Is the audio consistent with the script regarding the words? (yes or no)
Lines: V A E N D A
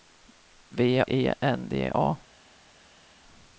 yes